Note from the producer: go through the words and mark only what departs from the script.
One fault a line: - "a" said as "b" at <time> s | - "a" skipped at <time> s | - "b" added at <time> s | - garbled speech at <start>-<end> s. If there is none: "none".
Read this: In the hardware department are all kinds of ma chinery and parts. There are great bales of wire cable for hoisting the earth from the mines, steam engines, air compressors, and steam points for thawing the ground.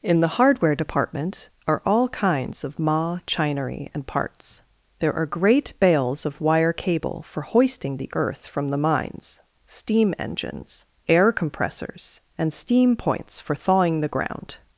none